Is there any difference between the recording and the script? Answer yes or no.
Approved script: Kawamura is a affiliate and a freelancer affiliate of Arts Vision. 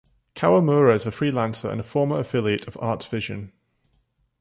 yes